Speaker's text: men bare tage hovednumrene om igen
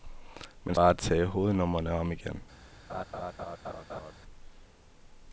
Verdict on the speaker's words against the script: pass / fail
pass